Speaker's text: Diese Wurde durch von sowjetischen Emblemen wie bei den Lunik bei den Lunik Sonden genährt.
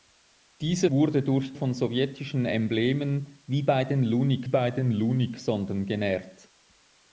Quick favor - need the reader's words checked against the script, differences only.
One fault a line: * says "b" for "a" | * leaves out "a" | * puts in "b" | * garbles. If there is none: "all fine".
all fine